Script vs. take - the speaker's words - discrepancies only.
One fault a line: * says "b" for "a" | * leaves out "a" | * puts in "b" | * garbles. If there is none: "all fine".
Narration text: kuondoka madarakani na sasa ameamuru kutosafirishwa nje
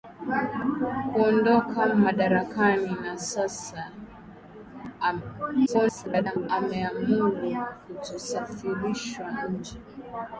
* garbles